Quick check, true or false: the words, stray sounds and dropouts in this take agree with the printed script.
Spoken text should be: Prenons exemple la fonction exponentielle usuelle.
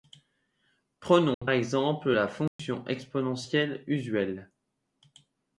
false